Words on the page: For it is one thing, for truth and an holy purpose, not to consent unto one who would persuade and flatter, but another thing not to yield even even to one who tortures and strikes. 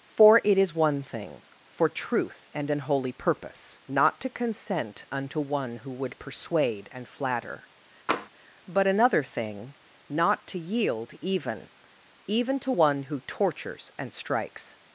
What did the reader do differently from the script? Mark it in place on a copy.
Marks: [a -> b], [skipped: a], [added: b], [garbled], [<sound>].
For it is one thing, for truth and an holy purpose, not to consent unto one who would persuade and flatter, [tap] but another thing not to yield even even to one who tortures and strikes.